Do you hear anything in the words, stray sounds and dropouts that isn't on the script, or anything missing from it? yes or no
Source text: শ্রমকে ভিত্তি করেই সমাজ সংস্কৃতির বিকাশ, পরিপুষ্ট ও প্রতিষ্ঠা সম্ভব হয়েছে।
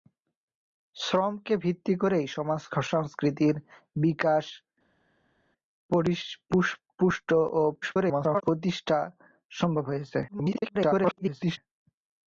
yes